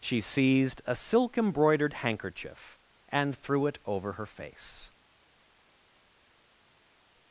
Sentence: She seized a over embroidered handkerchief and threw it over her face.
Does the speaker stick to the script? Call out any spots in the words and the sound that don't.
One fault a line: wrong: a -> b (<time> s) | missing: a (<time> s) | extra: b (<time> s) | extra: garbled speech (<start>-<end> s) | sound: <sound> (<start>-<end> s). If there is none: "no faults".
wrong: over -> silk (0.9 s)